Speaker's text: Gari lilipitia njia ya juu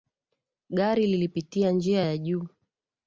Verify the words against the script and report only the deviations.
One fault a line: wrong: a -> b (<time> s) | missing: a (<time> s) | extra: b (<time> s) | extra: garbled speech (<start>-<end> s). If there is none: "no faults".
no faults